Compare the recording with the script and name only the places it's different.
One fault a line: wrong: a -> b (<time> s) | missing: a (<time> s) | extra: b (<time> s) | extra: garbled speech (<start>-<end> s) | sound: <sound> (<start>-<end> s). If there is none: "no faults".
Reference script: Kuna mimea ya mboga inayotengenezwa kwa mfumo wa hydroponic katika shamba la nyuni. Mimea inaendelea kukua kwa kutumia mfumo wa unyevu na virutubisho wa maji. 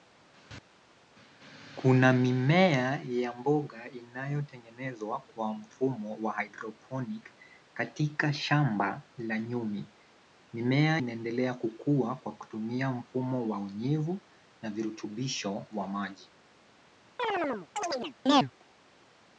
sound: chirp (17.2-18.5 s)